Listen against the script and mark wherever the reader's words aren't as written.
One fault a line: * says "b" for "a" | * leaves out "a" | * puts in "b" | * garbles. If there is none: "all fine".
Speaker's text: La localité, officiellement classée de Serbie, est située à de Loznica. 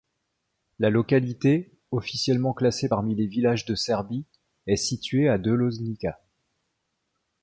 * puts in "parmi les villages"